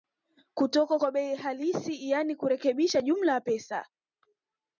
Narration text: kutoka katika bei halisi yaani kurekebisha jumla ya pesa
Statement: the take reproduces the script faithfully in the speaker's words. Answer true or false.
false